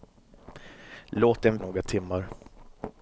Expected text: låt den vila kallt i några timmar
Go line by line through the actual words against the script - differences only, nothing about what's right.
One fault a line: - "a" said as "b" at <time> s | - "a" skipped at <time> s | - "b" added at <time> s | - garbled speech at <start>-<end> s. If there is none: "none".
- "vila kallt" skipped at 1.6 s